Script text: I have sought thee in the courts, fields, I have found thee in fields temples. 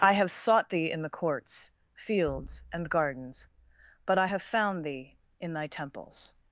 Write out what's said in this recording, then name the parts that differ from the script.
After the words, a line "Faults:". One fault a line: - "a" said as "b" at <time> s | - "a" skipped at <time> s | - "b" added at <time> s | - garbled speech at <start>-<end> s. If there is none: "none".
I have sought thee in the courts, fields, and gardens, but I have found thee in thy temples.
Faults:
- "and gardens but" added at 2.7 s
- "fields" said as "thy" at 5.5 s